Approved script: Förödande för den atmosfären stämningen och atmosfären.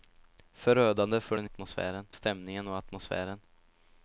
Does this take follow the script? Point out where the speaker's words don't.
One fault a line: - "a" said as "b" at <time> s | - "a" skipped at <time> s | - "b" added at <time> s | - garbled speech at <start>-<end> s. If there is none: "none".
none